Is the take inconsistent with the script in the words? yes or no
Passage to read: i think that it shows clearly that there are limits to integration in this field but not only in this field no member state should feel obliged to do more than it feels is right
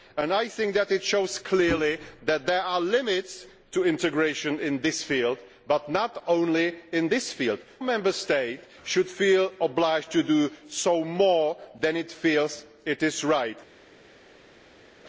yes